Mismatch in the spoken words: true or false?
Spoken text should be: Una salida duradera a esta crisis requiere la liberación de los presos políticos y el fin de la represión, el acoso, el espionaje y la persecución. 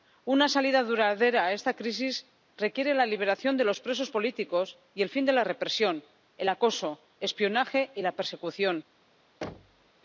false